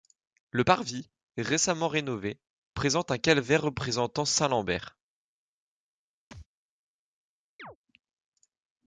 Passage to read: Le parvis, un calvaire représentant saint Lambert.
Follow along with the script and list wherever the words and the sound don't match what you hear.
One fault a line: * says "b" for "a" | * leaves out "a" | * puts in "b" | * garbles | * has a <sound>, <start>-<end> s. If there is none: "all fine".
* puts in "récemment rénové présente"
* has a thud, 6.3-6.5 s
* has a chirp, 7.6-7.8 s